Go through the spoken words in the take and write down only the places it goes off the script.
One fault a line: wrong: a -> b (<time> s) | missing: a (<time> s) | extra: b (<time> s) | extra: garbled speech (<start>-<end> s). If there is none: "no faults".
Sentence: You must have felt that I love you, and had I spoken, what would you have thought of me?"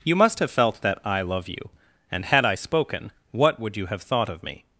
no faults